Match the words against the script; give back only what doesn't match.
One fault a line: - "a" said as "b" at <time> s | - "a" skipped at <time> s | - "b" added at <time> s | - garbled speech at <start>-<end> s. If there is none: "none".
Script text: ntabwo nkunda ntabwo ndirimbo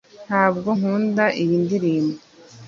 - "ntabwo" said as "iyi" at 1.4 s